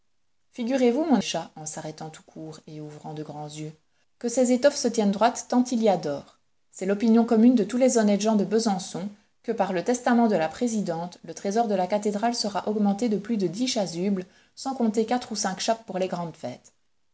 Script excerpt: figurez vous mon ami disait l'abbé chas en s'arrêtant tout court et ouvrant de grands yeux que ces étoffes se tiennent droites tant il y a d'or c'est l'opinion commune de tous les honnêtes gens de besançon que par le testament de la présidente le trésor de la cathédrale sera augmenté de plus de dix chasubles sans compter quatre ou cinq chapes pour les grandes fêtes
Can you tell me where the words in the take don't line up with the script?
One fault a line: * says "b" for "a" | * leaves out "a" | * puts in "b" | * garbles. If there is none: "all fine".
* leaves out "ami disait l'abbé"